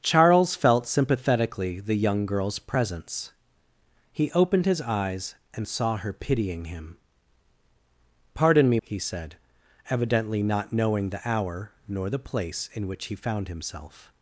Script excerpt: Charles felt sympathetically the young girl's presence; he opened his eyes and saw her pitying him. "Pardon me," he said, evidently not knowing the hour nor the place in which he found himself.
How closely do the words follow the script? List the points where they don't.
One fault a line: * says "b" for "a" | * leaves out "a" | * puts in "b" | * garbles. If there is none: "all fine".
all fine